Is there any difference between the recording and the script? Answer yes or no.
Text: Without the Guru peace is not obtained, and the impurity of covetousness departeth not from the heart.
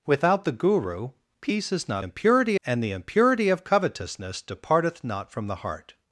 yes